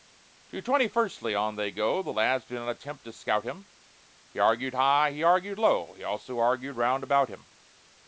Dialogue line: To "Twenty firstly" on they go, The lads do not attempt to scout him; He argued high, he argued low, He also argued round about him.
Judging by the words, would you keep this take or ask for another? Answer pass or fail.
pass